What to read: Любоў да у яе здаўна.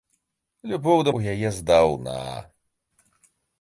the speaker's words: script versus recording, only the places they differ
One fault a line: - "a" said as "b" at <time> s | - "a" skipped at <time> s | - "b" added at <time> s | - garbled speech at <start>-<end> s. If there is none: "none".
none